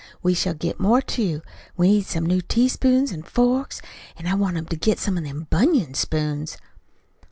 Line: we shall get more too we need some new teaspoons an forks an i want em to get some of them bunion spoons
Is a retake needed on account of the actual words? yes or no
no